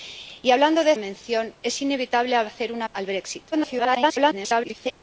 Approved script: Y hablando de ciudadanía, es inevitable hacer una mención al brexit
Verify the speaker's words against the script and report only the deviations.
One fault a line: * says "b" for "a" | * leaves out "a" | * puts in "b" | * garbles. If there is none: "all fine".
* says "mención" for "ciudadanía"
* leaves out "mención"
* garbles